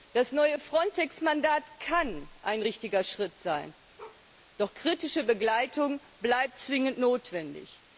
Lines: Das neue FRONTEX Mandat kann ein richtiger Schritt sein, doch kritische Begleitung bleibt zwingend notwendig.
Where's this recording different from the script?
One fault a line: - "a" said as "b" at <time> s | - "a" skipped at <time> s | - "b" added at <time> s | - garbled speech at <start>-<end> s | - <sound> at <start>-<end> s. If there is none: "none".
- bark at 4.0-4.2 s